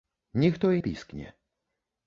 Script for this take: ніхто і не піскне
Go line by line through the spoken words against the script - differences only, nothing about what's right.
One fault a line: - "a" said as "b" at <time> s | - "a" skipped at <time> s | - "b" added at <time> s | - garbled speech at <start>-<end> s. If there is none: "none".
- "не" skipped at 0.8 s